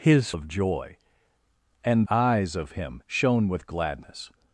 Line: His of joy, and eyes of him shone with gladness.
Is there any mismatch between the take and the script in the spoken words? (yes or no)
no